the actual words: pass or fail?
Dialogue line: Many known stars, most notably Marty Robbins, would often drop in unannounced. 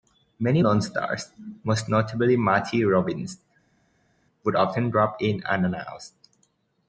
pass